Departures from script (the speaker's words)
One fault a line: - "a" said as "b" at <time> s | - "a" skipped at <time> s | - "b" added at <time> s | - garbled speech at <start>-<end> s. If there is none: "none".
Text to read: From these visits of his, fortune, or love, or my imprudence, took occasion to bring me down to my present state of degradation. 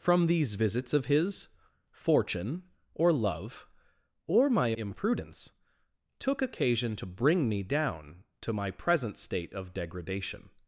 none